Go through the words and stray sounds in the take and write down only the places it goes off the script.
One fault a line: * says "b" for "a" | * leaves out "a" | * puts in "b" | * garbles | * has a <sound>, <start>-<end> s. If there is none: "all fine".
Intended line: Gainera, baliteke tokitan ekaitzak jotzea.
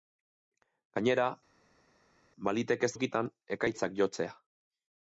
all fine